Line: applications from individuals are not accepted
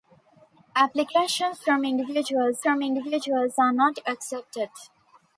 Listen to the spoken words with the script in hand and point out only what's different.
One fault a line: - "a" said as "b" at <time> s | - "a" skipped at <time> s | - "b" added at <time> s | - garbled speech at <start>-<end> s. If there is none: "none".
- "from individuals" added at 2.6 s